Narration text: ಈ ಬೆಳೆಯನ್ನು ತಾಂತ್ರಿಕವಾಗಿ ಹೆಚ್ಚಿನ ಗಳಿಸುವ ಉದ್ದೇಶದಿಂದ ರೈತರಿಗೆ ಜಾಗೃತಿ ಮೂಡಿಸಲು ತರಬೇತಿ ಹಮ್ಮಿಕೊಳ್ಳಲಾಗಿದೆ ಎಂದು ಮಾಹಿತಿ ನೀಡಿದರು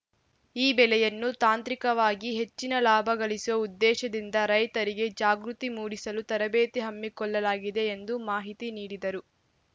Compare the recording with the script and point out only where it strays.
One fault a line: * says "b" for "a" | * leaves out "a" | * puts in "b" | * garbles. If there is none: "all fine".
* puts in "ಲಾಭ"